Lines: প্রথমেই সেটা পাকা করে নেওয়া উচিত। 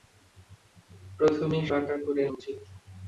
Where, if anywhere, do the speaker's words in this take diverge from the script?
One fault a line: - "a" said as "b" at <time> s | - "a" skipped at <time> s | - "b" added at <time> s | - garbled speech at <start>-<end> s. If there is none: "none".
- "সেটা" skipped at 1.6 s
- "নেওয়া" skipped at 2.2 s